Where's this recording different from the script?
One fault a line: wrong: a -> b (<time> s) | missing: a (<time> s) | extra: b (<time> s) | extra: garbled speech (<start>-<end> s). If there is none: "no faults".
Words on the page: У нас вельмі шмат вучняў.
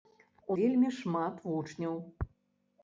missing: нас (0.6 s)